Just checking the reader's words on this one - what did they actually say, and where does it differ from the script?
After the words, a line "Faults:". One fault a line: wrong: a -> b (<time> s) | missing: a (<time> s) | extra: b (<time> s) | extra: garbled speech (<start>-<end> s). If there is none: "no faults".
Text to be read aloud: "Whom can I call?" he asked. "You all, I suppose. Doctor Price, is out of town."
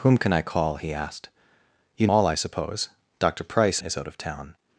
"Whom can I call?" he asked. "You all, I suppose. Doctor Price, is out of town."
Faults:
no faults